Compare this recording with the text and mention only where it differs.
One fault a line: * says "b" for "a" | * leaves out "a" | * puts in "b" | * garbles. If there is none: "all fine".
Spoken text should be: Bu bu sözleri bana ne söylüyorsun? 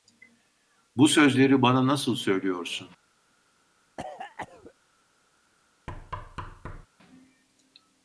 * leaves out "bu"
* says "nasıl" for "ne"